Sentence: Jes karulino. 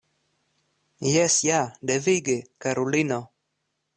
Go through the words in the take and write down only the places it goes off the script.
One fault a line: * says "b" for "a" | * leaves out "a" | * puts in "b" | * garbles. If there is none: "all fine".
* puts in "ja devige"